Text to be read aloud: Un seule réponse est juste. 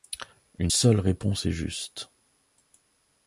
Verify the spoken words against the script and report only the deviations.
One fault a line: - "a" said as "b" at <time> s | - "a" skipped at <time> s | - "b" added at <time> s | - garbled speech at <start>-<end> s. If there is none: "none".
- "Un" said as "Une" at 0.6 s